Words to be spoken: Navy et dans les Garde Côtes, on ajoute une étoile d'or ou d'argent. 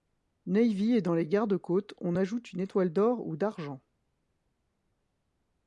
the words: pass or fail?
pass